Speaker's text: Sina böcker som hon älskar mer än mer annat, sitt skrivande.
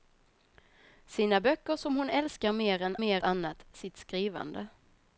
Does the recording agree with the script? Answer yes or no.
yes